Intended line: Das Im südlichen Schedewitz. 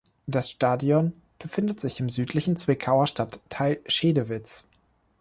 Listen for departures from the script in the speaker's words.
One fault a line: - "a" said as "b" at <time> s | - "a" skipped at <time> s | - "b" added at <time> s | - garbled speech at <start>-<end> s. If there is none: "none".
- "Stadion befindet sich" added at 0.5 s
- "Zwickauer Stadtteil" added at 2.5 s